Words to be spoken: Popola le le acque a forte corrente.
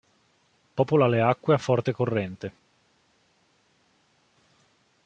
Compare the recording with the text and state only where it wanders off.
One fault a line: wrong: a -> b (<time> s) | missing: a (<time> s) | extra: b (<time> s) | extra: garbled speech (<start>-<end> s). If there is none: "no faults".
missing: le (1.2 s)